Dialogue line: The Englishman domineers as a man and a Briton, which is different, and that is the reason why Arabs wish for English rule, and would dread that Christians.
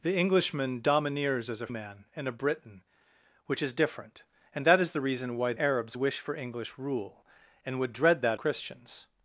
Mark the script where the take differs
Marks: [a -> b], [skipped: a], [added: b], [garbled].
The Englishman domineers as a man and a Briton, which is different, and that is the reason why Arabs wish for English rule, and would dread that Christians.